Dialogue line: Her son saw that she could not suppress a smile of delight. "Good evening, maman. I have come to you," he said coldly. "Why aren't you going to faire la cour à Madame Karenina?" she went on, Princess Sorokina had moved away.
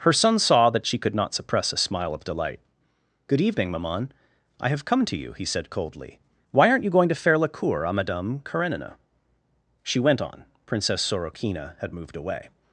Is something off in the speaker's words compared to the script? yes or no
no